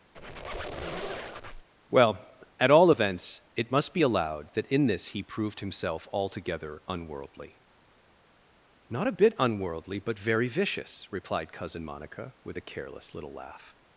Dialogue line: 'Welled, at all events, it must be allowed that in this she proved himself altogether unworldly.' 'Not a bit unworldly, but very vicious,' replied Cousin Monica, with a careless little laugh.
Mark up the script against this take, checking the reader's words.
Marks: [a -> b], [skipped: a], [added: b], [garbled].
['Welled, -> Well] at all events, it must be allowed that in this [she -> he] proved himself altogether unworldly.' 'Not a bit unworldly, but very vicious,' replied Cousin Monica, with a careless little laugh.